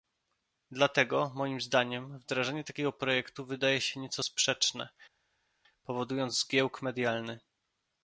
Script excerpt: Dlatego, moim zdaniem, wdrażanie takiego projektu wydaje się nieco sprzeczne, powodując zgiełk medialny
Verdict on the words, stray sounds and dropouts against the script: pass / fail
pass